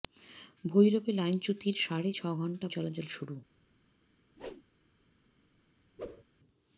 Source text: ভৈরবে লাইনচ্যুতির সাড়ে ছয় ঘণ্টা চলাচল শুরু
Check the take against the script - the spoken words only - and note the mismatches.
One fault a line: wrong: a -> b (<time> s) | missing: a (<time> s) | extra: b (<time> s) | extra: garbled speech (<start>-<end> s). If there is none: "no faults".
no faults